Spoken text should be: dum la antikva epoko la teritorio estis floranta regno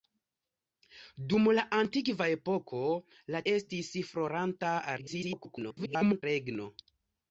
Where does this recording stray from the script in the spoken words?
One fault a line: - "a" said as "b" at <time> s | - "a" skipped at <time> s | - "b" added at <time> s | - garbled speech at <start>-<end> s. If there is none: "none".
- "teritorio" skipped at 3.4 s
- garbled speech at 5.0-6.2 s